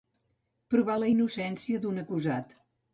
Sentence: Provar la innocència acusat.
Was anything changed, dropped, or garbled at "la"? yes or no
no